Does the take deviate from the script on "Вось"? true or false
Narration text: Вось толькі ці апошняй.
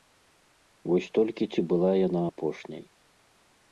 false